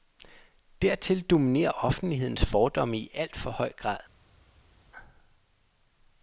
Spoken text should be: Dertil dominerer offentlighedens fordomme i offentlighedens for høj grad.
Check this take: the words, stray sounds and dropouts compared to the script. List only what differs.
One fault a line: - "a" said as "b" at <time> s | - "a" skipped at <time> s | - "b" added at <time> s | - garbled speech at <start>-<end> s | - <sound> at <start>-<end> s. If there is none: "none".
- "offentlighedens" said as "alt" at 3.1 s